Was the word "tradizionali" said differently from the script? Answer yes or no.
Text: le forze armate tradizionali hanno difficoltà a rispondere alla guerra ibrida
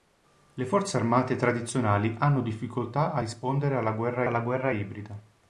no